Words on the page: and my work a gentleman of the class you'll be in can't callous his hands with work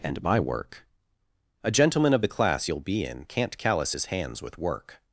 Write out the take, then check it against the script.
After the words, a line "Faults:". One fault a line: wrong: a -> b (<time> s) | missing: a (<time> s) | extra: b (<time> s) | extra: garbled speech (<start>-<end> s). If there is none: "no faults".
and my work a gentleman of the class you'll be in can't callous his hands with work
Faults:
no faults